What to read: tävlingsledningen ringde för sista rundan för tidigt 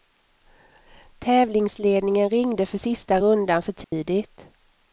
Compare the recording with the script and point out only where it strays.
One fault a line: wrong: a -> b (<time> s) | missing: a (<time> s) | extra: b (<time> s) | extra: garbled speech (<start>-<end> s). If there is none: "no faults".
no faults